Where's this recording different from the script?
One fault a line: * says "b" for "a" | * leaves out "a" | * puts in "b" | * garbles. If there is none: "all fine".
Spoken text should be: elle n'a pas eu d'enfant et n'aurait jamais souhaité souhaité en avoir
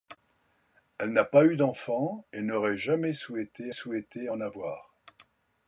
all fine